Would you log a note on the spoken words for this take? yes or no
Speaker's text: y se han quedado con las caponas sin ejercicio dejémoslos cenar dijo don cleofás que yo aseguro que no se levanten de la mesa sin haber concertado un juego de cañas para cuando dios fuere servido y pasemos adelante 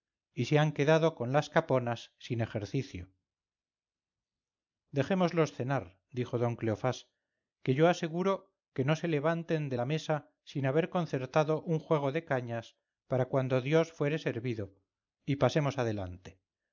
no